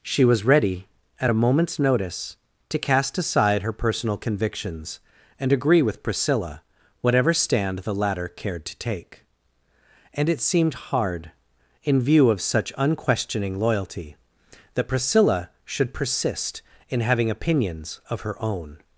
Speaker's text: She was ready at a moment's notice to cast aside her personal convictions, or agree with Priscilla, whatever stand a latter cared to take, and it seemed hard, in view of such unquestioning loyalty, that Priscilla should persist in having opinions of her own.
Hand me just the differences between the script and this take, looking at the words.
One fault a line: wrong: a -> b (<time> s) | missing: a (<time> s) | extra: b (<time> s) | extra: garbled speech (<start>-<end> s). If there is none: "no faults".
wrong: or -> and (5.4 s)
wrong: a -> the (7.8 s)